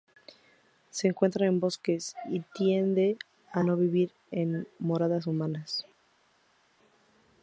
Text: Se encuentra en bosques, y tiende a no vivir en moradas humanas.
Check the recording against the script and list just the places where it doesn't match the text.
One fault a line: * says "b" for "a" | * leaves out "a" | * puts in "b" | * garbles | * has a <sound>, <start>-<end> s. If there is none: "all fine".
all fine